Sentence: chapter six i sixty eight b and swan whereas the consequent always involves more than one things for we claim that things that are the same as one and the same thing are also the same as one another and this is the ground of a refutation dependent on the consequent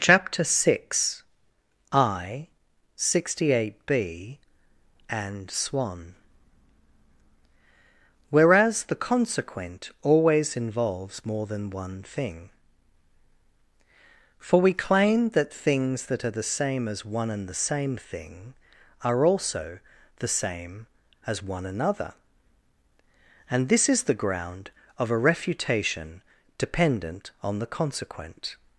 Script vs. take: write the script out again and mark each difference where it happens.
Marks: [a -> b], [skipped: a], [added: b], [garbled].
chapter six i sixty eight b and swan whereas the consequent always involves more than one [things -> thing] for we claim that things that are the same as one and the same thing are also the same as one another and this is the ground of a refutation dependent on the consequent